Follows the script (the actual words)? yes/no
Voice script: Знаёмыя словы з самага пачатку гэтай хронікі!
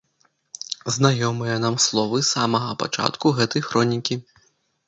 no